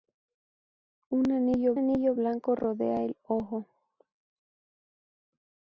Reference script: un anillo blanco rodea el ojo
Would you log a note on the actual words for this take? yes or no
yes